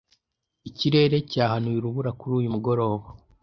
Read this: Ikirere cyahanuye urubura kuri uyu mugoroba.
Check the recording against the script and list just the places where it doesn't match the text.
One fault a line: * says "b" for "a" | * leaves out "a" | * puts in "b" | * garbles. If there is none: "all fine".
all fine